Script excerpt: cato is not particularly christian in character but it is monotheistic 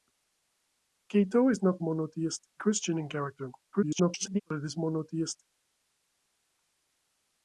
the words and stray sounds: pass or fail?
fail